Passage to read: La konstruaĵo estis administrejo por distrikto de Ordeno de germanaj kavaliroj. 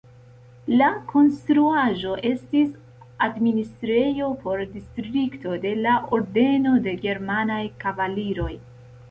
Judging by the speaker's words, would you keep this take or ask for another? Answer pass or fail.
fail